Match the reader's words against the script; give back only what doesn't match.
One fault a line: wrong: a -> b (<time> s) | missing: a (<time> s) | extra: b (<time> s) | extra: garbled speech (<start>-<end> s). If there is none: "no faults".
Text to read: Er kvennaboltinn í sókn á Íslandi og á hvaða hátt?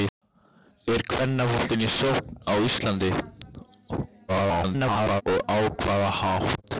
extra: garbled speech (4.3-5.2 s)